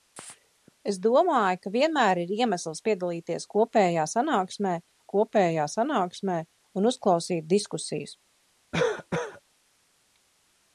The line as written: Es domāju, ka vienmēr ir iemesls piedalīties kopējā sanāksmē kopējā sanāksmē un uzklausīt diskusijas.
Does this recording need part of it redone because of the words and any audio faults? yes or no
yes